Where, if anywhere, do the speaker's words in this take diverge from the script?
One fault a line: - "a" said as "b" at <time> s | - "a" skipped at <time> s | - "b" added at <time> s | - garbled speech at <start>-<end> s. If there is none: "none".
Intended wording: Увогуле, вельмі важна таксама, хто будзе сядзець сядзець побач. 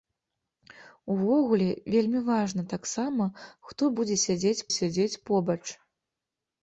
none